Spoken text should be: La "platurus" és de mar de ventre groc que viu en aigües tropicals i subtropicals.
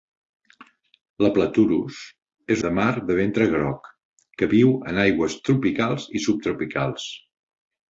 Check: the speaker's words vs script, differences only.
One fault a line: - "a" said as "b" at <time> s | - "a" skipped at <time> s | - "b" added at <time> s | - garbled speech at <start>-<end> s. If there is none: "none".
none